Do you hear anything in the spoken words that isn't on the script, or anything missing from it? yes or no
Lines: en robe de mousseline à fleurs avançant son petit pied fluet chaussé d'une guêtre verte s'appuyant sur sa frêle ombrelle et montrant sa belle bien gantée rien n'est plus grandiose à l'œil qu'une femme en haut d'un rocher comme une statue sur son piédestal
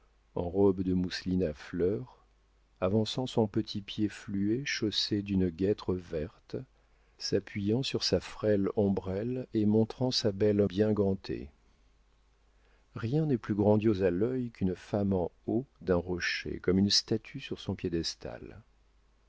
no